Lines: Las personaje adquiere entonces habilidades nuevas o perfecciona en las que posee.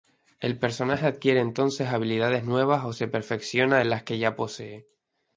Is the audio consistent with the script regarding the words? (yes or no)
no